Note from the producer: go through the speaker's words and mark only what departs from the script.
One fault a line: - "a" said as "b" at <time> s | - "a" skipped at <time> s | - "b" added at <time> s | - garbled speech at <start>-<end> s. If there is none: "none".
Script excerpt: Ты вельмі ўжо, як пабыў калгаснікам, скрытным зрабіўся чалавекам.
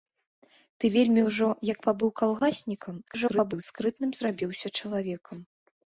- garbled speech at 3.1-3.6 s